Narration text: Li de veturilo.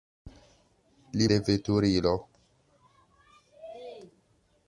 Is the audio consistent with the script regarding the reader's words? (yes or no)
yes